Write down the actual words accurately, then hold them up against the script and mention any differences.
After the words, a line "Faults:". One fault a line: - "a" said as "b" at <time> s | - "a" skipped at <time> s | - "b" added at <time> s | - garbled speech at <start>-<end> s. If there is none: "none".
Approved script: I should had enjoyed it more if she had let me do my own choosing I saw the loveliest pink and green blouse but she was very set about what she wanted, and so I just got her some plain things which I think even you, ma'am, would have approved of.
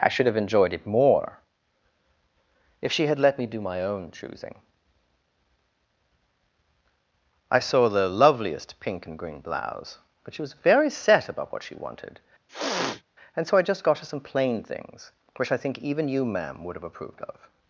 I should have enjoyed it more if she had let me do my own choosing I saw the loveliest pink and green blouse but she was very set about what she wanted, and so I just got her some plain things which I think even you, ma'am, would have approved of.
Faults:
- "had" said as "have" at 0.2 s